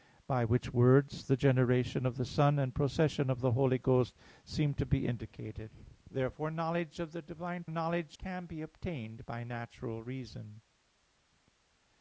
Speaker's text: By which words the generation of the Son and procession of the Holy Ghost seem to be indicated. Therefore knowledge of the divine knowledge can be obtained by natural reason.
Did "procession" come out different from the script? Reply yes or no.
no